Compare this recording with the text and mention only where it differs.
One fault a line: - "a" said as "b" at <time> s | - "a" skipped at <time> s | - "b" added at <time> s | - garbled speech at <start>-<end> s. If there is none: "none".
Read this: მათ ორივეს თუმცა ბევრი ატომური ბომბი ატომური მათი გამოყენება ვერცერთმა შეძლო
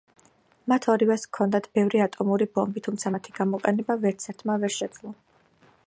- "თუმცა" said as "ჰქონდათ" at 1.3 s
- "ატომური" said as "თუმცა" at 2.9 s
- "ვერ" added at 4.7 s